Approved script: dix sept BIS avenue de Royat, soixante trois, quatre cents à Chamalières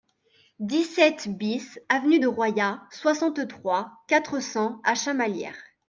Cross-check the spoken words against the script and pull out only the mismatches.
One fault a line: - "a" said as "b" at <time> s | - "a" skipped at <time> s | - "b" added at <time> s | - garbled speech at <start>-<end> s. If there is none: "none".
none